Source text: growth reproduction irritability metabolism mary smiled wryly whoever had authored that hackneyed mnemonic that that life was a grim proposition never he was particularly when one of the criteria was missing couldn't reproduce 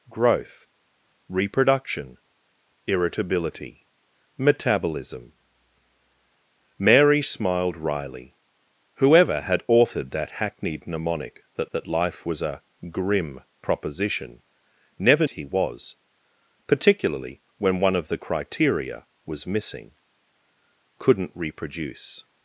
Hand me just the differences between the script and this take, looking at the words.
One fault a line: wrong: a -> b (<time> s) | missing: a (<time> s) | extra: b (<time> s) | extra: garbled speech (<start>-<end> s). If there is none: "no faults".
no faults